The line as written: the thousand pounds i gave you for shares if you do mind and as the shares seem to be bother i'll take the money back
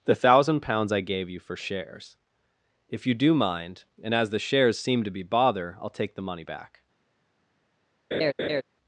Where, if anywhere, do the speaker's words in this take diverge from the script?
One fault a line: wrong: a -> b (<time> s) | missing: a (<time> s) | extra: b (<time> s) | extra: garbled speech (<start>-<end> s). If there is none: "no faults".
no faults